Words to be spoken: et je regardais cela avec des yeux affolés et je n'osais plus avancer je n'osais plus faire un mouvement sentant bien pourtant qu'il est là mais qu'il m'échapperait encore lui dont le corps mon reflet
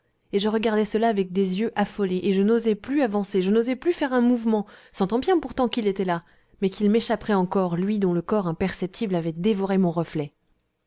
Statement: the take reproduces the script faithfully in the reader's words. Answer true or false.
false